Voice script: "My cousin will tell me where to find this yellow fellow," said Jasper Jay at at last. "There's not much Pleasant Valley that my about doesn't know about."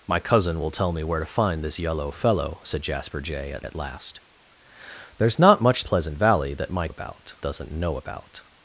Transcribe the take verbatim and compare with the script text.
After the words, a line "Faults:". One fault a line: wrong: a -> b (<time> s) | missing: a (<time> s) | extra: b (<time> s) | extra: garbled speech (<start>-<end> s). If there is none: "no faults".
"My cousin will tell me where to find this yellow fellow," said Jasper Jay at at last. "There's not much Pleasant Valley that my about doesn't know about."
Faults:
no faults